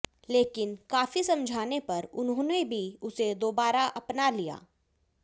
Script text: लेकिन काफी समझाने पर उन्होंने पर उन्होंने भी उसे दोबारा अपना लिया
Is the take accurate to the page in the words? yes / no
no